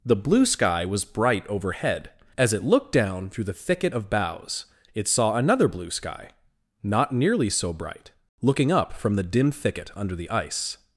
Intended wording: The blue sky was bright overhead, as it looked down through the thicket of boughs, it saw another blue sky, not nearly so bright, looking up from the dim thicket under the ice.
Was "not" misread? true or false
false